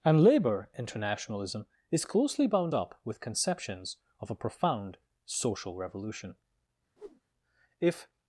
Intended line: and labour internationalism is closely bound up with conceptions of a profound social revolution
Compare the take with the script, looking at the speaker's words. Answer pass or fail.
fail